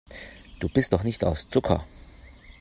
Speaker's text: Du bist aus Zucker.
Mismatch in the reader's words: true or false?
true